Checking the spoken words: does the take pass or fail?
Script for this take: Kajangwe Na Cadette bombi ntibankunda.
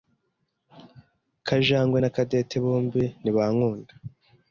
pass